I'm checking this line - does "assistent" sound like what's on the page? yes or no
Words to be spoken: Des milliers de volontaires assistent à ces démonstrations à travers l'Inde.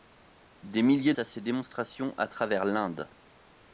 no